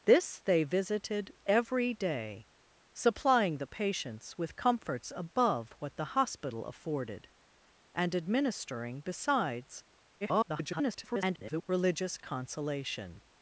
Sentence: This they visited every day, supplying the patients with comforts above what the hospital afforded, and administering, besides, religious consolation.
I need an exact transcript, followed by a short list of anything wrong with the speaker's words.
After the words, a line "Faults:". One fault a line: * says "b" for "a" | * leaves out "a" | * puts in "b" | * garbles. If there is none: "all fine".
This they visited every day, supplying the patients with comforts above what the hospital afforded, and administering, besides, [garbled] religious consolation.
Faults:
* garbles